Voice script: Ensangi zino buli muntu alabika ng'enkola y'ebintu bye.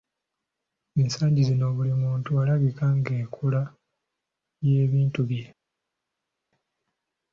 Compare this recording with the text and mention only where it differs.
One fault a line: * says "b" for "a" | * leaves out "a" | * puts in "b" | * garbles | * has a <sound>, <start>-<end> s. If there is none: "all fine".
all fine